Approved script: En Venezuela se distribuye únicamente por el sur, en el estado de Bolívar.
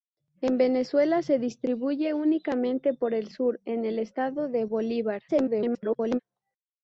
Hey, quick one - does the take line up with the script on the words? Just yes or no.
no